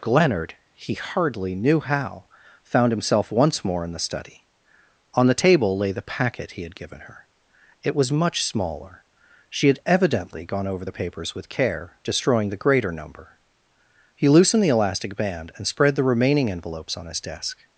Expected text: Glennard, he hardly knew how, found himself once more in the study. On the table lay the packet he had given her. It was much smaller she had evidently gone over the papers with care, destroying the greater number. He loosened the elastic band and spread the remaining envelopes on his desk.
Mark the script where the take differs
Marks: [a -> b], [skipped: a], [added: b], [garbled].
Glennard, he hardly knew how, found himself once more in the study. On the table lay the packet he had given her. It was much smaller she had evidently gone over the papers with care, destroying the greater number. He loosened the elastic band and spread the remaining envelopes on his desk.